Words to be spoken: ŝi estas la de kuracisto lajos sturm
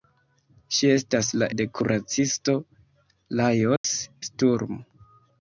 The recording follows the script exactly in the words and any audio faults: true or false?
false